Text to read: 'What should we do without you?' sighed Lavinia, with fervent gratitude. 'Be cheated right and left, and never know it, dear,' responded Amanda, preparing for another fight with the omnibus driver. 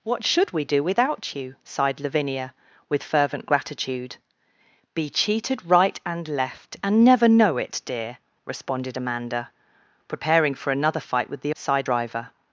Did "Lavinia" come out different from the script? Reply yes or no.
no